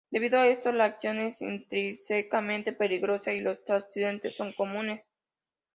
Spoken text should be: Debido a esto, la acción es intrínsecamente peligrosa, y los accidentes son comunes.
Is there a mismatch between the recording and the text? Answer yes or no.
no